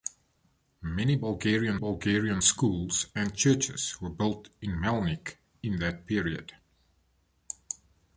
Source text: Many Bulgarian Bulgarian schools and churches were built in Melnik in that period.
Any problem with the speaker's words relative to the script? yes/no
no